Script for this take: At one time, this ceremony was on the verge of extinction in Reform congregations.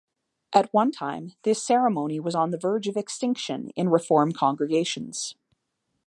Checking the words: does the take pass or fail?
pass